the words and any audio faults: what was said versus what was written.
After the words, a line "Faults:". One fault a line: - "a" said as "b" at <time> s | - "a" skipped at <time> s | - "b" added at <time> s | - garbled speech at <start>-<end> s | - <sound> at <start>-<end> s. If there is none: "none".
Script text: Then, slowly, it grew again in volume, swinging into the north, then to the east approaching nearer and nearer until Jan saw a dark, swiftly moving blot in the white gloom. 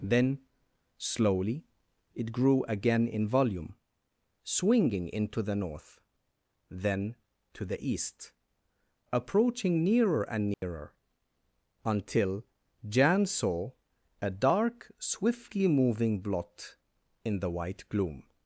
Then, slowly, it grew again in volume, swinging into the north, then to the east approaching nearer and nearer until Jan saw a dark, swiftly moving blot in the white gloom.
Faults:
- dropout at 10.5-10.6 s